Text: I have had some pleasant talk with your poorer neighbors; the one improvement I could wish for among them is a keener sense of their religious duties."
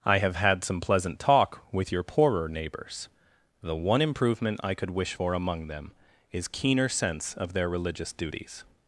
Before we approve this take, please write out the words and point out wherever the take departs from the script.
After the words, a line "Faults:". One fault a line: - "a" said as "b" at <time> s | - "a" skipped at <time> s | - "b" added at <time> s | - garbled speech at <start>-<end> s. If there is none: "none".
I have had some pleasant talk with your poorer neighbors; the one improvement I could wish for among them is keener sense of their religious duties."
Faults:
- "a" skipped at 6.5 s